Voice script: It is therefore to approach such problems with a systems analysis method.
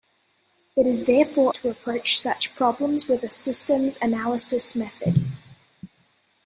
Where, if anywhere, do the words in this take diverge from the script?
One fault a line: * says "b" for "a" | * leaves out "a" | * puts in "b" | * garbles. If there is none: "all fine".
all fine